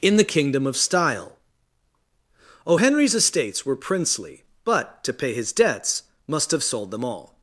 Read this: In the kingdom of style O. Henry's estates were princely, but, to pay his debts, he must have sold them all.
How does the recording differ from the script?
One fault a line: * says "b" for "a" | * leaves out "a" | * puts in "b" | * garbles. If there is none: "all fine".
* leaves out "he"